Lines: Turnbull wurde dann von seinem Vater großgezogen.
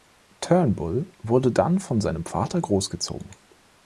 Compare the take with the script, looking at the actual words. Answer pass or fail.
pass